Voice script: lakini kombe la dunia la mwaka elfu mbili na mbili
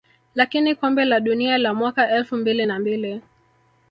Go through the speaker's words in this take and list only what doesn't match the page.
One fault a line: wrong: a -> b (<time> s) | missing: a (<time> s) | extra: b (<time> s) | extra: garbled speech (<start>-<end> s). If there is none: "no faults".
no faults